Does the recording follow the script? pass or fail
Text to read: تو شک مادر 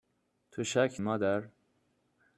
pass